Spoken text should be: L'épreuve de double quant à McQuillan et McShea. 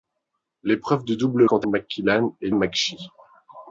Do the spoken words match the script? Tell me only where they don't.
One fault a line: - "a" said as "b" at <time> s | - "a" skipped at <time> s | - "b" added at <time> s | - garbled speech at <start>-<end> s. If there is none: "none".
none